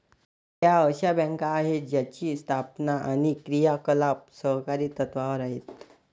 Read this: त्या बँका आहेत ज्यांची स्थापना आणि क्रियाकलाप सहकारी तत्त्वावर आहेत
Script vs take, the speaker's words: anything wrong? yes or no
yes